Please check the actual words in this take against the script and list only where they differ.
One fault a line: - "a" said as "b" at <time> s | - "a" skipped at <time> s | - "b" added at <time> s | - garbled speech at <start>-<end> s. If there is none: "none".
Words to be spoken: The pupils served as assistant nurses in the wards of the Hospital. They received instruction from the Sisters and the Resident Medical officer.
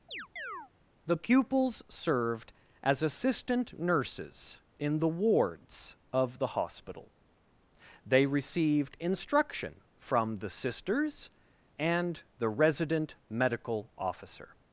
none